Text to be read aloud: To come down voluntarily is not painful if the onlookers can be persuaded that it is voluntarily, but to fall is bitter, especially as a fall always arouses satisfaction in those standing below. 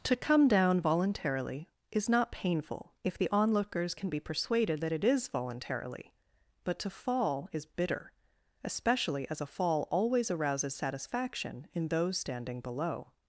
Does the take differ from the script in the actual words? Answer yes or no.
no